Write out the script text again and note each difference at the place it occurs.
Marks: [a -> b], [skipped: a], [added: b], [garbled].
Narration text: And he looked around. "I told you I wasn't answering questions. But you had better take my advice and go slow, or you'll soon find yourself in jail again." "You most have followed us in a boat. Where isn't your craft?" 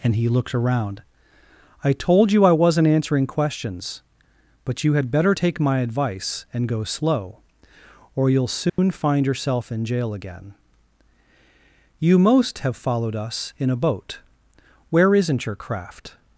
And he looked around. "I told you I wasn't answering questions. But you had better take my advice and go slow, or you'll soon find yourself in jail again." "You most have followed us in a boat. Where isn't your craft?"